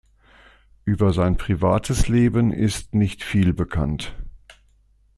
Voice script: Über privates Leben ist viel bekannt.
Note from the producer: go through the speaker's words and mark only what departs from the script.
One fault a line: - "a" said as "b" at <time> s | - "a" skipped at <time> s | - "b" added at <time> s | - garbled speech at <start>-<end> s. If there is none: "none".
- "sein" added at 1.1 s
- "nicht" added at 3.0 s